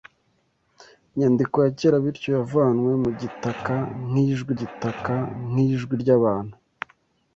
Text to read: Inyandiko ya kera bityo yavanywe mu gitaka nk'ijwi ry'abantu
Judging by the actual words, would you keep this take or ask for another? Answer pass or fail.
fail